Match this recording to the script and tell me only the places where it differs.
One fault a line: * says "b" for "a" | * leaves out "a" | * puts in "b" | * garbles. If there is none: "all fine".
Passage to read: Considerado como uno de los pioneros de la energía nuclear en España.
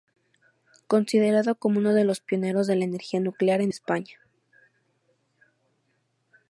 all fine